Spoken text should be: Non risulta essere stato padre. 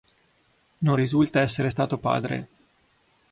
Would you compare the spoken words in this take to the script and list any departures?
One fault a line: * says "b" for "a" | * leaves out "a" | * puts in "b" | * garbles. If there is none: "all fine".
all fine